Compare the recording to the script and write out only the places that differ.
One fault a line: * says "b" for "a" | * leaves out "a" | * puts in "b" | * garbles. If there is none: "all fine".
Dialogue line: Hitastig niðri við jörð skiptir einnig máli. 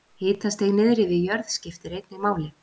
all fine